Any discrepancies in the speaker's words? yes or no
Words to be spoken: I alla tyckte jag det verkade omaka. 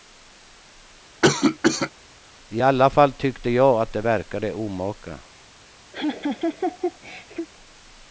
yes